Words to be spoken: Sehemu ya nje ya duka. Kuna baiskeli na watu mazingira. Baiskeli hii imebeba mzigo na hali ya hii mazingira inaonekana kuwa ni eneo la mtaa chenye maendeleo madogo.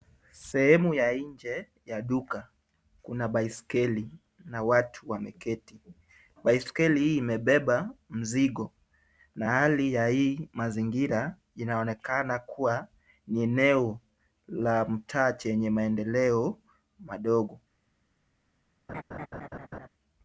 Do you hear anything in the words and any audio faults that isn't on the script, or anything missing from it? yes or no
yes